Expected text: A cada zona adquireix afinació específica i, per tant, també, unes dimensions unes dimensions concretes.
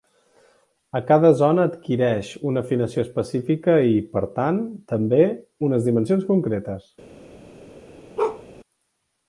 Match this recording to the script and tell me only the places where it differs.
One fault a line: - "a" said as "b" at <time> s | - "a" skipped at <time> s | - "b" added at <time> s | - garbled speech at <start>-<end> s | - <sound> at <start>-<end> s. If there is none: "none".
- "una" added at 2.5 s
- "unes dimensions" skipped at 6.3 s
- bark at 8.2-8.4 s